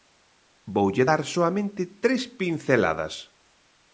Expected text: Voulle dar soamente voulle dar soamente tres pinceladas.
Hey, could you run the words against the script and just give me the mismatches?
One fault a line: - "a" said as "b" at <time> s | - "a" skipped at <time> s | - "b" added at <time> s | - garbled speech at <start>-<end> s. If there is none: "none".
- "voulle dar soamente" skipped at 1.8 s